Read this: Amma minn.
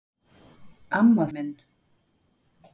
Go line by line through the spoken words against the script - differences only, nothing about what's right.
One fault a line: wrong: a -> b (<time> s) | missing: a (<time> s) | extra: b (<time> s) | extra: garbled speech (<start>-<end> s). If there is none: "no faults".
no faults